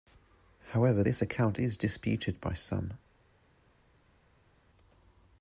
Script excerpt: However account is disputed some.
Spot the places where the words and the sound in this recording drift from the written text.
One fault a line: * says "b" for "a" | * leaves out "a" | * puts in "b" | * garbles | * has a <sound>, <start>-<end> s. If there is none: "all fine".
* puts in "this"
* puts in "by"